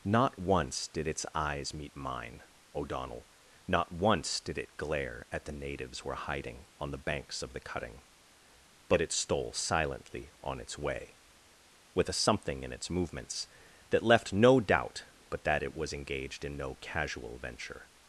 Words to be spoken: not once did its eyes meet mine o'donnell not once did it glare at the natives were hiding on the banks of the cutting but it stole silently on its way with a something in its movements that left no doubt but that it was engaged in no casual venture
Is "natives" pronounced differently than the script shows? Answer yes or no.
no